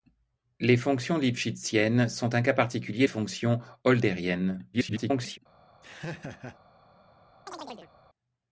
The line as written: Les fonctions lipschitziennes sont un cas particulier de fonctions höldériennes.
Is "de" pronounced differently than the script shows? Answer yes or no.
yes